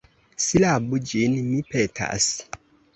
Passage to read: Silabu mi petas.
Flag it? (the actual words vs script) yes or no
yes